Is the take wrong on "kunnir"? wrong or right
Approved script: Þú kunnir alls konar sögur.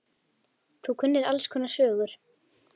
right